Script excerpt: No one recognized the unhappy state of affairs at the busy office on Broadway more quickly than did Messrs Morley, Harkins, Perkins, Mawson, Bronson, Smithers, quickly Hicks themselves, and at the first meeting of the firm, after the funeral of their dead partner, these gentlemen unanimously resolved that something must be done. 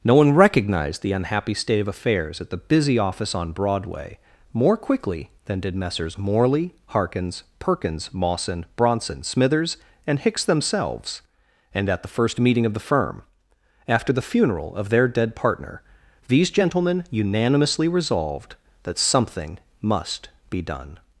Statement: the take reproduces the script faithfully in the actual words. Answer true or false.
false